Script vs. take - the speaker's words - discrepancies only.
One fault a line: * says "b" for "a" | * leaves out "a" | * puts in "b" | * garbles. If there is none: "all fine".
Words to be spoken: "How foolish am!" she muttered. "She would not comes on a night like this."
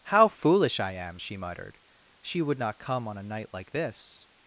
* puts in "I"
* says "come" for "comes"